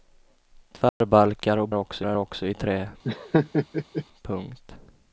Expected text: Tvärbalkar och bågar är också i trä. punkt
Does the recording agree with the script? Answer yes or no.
no